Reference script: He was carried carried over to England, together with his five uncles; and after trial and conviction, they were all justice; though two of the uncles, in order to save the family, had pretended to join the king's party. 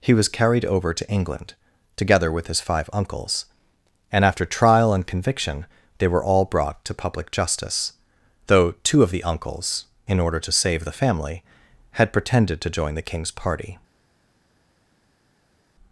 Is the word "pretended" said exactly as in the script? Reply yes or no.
yes